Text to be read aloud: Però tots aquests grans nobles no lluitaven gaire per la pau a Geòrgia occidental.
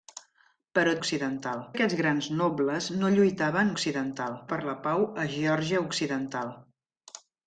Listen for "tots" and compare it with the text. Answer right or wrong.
wrong